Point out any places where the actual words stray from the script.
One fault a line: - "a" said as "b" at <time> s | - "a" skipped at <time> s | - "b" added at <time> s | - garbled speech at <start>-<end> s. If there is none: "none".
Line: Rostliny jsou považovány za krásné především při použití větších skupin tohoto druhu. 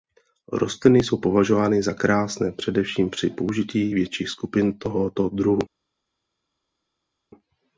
none